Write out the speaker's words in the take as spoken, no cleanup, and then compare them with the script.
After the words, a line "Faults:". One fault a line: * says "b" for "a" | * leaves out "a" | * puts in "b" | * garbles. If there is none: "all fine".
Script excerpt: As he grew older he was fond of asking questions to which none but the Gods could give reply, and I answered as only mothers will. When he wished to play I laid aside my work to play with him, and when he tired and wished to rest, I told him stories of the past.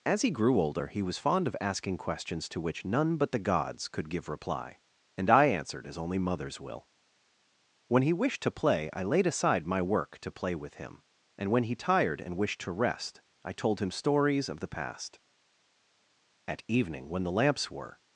As he grew older he was fond of asking questions to which none but the Gods could give reply, and I answered as only mothers will. When he wished to play I laid aside my work to play with him, and when he tired and wished to rest, I told him stories of the past. At evening when the lamps were
Faults:
* puts in "At evening when the lamps were"